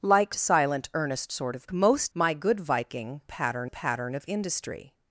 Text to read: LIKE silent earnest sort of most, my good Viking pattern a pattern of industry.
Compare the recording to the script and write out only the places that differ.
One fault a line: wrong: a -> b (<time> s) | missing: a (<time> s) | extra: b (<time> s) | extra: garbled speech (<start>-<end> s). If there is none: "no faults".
no faults